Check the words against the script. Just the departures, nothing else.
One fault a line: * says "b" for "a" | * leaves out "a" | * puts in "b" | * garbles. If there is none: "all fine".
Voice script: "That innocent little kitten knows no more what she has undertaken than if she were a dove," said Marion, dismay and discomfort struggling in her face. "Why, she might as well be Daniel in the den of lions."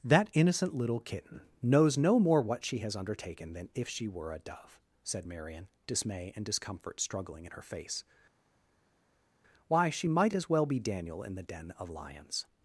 all fine